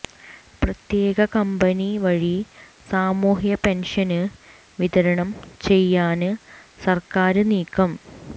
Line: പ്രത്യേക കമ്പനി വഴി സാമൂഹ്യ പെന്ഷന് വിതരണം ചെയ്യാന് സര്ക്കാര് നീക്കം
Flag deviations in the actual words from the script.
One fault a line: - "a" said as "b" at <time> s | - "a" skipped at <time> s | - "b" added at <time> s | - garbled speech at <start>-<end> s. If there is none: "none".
none